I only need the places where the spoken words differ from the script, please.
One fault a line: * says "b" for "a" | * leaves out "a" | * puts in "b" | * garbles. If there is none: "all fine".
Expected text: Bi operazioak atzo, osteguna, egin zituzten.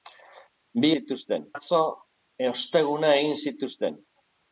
* says "zituzten" for "operazioak"